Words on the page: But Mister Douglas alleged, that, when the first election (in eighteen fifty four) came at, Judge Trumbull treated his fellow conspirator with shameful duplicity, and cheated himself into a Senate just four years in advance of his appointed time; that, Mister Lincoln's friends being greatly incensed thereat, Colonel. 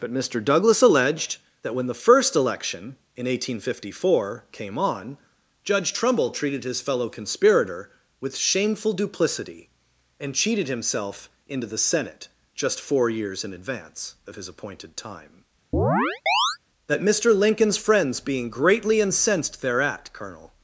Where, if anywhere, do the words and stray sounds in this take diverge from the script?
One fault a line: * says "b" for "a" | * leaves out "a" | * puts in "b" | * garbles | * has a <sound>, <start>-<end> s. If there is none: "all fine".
* says "on" for "at"
* says "the" for "a"
* has a chirp, 15.7-16.6 s